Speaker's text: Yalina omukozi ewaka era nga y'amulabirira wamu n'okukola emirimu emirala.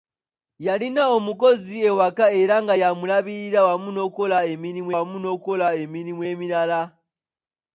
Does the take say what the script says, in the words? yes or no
no